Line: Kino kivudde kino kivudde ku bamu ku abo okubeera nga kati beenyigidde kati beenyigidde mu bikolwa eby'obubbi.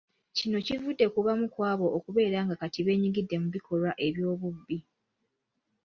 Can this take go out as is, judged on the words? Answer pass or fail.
fail